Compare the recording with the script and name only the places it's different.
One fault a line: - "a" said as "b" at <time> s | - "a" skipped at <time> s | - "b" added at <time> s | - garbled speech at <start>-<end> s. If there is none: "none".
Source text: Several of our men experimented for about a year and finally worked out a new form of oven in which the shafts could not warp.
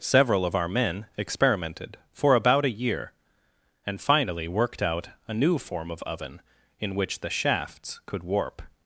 - "not" skipped at 8.2 s